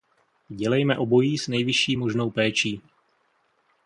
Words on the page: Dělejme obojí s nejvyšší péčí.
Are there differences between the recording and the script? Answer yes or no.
yes